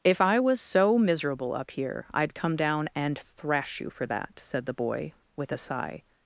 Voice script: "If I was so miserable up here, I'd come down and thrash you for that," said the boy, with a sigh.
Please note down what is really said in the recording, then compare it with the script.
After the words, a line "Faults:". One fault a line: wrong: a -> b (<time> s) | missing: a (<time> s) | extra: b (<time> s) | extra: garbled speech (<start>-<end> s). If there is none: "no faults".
"If I was so miserable up here, I'd come down and thrash you for that," said the boy, with a sigh.
Faults:
no faults